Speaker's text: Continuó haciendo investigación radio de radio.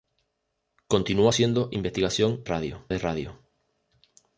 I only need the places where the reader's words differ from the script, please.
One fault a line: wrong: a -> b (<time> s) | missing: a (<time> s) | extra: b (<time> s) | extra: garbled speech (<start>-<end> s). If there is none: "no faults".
no faults